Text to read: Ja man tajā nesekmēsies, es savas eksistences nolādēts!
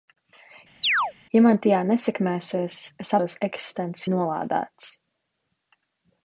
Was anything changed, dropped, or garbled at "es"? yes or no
no